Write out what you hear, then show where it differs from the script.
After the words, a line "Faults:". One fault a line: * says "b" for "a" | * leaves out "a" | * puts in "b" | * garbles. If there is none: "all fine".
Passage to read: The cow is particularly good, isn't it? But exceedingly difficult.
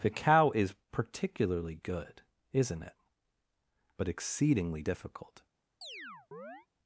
The cow is particularly good, isn't it? But exceedingly difficult.
Faults:
all fine